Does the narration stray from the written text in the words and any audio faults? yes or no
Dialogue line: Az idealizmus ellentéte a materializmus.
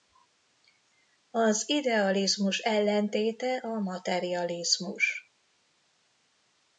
no